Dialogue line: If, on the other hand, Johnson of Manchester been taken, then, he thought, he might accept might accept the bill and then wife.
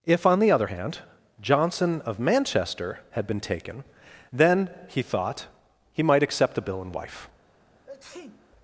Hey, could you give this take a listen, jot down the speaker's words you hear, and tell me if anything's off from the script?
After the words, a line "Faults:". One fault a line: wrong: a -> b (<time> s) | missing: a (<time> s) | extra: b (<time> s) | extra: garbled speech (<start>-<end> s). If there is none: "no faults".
If, on the other hand, Johnson of Manchester had been taken, then, he thought, he might accept the bill and wife.
Faults:
extra: had (3.1 s)
missing: might accept (6.5 s)
missing: then (6.9 s)